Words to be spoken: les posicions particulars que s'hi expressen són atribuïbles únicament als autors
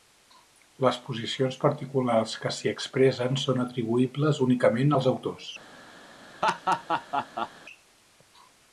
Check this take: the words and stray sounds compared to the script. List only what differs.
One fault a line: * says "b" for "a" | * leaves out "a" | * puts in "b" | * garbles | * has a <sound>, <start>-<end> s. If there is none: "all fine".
* has a laugh, 6.4-7.5 s